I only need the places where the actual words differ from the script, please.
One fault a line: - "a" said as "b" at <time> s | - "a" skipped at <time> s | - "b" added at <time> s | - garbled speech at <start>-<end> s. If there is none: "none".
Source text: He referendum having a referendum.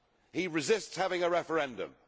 - "referendum" said as "resists" at 0.5 s